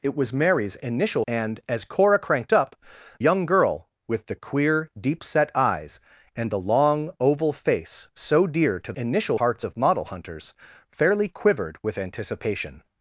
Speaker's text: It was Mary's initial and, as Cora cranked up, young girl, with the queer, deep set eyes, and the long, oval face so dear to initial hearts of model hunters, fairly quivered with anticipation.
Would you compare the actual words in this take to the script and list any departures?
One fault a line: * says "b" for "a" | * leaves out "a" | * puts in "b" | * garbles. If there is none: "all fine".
all fine